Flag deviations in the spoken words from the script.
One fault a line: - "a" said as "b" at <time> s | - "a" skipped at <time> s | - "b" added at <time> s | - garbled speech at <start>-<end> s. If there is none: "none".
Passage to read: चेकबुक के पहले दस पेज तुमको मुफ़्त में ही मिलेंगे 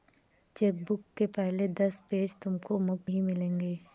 - "में" skipped at 3.1 s